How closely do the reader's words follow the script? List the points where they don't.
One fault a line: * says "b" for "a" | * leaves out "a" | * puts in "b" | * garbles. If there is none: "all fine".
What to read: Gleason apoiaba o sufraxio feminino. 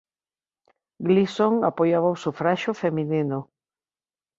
all fine